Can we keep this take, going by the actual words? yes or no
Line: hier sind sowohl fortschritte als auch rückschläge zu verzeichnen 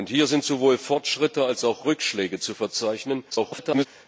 no